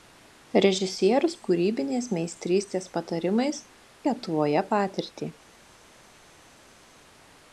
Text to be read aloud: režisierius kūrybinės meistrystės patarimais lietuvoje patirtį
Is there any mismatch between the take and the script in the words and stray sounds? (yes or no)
no